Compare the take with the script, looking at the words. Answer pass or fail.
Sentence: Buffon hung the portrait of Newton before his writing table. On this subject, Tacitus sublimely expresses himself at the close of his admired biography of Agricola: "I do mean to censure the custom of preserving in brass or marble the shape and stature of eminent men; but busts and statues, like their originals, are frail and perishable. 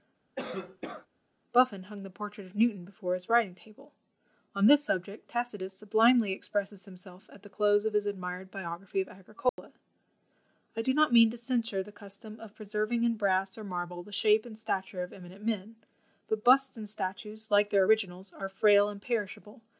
fail